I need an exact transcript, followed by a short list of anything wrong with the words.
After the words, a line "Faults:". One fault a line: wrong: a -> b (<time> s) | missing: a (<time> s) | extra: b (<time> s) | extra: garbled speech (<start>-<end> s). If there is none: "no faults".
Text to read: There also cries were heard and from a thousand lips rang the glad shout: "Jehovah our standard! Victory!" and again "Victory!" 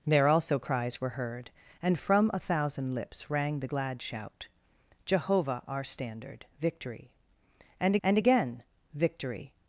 There also cries were heard and from a thousand lips rang the glad shout: "Jehovah our standard! Victory!" and and again "Victory!"
Faults:
extra: and (8.0 s)